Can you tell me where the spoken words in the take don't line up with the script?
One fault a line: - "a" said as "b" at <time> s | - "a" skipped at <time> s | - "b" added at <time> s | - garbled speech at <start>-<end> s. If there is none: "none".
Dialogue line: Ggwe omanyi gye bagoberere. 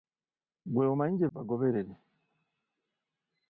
none